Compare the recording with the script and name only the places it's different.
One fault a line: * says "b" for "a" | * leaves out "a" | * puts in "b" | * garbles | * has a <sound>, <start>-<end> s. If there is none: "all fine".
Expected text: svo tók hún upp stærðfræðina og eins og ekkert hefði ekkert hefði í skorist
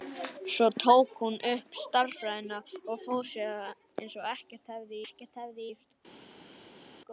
all fine